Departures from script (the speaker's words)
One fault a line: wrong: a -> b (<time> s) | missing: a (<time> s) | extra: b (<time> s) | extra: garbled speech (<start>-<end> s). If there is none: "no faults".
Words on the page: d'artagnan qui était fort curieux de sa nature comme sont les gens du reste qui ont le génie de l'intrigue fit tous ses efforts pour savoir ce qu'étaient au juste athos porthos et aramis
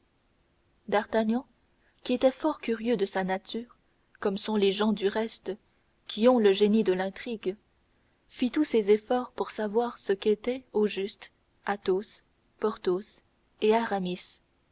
no faults